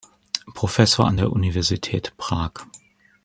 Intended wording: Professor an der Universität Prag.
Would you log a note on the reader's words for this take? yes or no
no